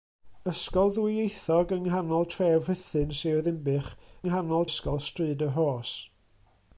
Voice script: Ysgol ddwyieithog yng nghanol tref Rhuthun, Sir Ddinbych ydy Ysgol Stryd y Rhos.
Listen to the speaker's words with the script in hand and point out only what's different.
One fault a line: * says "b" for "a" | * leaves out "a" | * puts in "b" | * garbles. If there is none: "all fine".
* says "nghanol" for "ydy"